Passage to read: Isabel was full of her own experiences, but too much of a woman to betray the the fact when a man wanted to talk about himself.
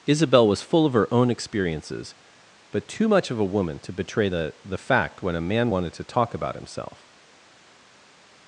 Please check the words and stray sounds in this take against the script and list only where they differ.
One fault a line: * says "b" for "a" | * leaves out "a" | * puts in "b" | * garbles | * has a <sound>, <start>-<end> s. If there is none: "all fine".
all fine